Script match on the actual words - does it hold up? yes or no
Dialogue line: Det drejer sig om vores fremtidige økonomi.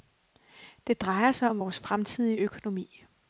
yes